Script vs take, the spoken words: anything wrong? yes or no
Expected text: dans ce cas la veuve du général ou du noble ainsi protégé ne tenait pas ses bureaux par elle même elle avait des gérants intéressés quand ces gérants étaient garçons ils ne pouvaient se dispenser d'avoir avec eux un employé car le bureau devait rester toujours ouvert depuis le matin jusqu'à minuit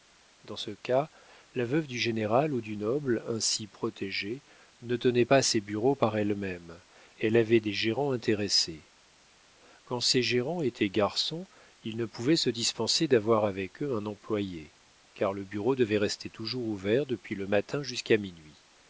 no